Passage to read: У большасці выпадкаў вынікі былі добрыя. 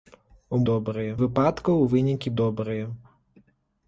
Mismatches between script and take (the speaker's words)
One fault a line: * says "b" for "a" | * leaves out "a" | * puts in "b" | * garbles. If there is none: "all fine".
* says "добрыя" for "большасці"
* leaves out "былі"